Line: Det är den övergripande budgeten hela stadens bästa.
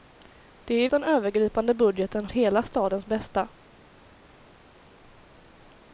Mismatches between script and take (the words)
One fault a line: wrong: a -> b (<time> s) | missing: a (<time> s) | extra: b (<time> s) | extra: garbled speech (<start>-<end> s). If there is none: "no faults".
no faults